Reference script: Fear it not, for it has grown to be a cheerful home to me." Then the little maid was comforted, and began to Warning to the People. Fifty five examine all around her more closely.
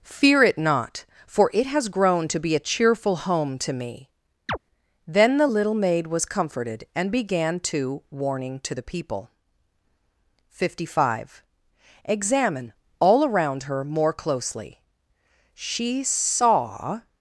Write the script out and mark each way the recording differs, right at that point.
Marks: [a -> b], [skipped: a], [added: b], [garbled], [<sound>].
Fear it not, for it has grown to be a cheerful home to me." [chirp] Then the little maid was comforted, and began to Warning to the People. Fifty five examine all around her more closely. [added: She saw]